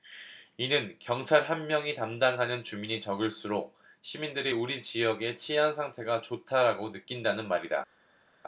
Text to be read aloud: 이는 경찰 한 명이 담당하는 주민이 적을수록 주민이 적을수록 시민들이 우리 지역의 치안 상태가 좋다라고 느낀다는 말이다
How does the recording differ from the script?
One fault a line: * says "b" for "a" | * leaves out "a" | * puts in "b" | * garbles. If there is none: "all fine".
* leaves out "주민이 적을수록"